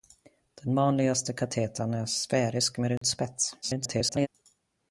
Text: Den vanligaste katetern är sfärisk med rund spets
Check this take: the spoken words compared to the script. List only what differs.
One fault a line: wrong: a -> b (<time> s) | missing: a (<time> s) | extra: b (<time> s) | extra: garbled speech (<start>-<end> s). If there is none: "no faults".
extra: garbled speech (3.6-4.3 s)